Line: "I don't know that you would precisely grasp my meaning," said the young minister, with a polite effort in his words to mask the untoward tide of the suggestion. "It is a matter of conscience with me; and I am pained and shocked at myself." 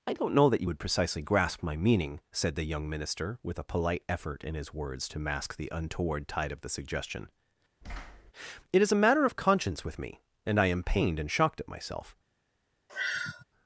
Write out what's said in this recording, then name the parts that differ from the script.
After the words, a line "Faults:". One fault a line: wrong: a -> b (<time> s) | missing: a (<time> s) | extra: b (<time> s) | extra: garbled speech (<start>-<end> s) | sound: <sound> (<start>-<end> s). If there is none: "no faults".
"I don't know that you would precisely grasp my meaning," said the young minister, with a polite effort in his words to mask the untoward tide of the suggestion. "It is a matter of conscience with me; and I am pained and shocked at myself."
Faults:
sound: thud (7.8-8.3 s)
sound: sigh (12.9-13.4 s)